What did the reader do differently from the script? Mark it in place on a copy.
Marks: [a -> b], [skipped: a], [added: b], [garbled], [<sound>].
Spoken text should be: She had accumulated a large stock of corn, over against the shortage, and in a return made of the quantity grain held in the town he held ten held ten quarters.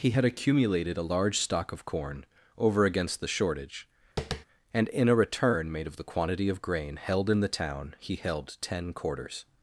[She -> He] had accumulated a large stock of corn, over against the shortage, [tap] and in a return made of the quantity [added: of] grain held in the town he held ten [skipped: held ten] quarters.